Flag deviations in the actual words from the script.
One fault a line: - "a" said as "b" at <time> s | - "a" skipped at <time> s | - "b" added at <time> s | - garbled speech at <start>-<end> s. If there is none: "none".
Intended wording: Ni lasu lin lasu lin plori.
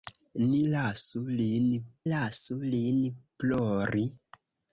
none